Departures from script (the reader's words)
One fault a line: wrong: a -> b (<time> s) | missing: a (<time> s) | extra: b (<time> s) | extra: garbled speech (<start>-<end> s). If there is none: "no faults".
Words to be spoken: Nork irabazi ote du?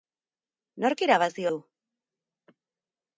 missing: ote (1.4 s)